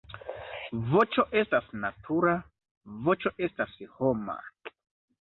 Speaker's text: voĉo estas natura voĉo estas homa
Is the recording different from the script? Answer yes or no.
no